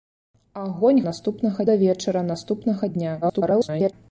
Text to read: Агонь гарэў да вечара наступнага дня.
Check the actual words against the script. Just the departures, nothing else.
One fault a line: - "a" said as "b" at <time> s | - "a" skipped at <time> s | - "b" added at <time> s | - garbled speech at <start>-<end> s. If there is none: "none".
- "гарэў" said as "наступнага" at 1.1 s
- garbled speech at 3.2-3.9 s